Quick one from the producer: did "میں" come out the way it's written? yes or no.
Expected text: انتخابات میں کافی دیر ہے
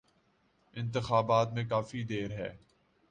yes